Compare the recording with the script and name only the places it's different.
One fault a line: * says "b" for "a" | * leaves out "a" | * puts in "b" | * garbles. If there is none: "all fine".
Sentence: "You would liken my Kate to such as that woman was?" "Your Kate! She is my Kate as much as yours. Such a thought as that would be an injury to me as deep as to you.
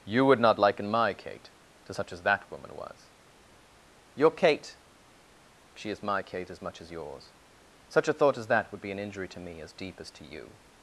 * puts in "not"